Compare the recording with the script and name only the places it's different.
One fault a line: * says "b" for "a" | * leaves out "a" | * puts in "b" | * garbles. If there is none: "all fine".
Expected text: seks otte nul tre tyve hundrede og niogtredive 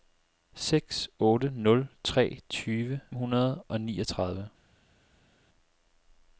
all fine